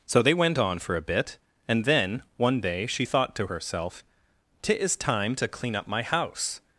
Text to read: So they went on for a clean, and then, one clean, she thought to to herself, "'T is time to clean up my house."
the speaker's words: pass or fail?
fail